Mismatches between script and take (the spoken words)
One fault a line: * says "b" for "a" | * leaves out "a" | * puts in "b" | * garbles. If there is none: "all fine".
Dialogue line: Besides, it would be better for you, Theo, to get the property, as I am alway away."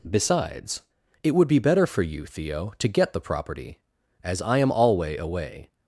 all fine